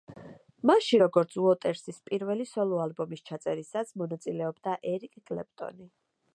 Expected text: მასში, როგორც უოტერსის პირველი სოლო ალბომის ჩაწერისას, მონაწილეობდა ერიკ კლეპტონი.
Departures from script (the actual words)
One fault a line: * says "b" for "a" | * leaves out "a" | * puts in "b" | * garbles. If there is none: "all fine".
all fine